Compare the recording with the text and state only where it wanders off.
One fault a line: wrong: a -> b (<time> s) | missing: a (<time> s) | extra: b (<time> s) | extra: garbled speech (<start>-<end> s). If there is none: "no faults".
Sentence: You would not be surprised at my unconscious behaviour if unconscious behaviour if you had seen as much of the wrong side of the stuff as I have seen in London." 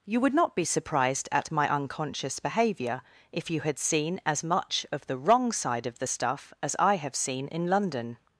missing: unconscious behaviour if (3.5 s)